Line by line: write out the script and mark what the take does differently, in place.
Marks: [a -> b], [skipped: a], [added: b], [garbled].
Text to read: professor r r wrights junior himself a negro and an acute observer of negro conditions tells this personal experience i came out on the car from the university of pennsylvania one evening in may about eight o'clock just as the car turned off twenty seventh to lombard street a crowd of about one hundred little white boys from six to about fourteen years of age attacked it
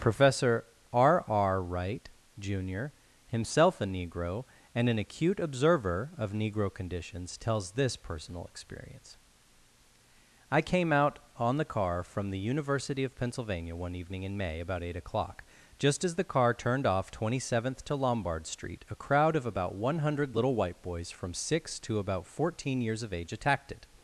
professor r r [wrights -> wright] junior himself a negro and an acute observer of negro conditions tells this personal experience i came out on the car from the university of pennsylvania one evening in may about eight o'clock just as the car turned off twenty seventh to lombard street a crowd of about one hundred little white boys from six to about fourteen years of age attacked it